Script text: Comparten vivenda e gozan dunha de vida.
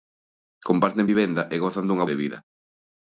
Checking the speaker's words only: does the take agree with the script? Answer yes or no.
yes